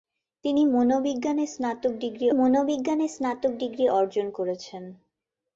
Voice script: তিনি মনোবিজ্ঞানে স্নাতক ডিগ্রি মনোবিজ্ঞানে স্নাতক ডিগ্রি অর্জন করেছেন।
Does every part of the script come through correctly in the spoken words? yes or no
yes